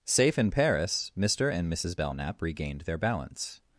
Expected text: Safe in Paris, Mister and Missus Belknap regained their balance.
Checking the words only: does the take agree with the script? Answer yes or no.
yes